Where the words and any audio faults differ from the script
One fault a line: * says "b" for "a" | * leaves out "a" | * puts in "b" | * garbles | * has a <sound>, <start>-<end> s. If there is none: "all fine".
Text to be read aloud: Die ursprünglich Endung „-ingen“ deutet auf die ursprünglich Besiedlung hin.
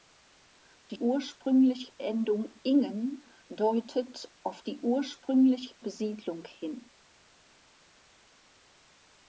all fine